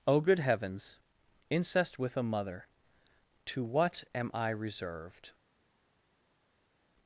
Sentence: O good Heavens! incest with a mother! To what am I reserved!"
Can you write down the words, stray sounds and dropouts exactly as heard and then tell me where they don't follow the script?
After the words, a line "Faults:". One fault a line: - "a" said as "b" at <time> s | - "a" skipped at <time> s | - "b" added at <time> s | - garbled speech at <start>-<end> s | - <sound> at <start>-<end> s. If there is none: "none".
O good Heavens! incest with a mother! To what am I reserved!"
Faults:
none